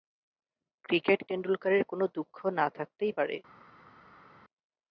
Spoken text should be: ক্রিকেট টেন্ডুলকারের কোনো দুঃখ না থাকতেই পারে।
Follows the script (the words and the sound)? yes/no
yes